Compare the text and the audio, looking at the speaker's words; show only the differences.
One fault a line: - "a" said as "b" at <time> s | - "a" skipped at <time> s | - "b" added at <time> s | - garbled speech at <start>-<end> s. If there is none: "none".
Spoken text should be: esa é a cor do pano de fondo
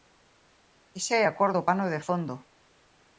none